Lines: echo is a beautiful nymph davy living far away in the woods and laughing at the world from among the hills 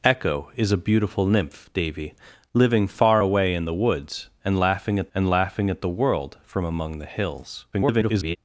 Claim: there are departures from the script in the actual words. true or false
true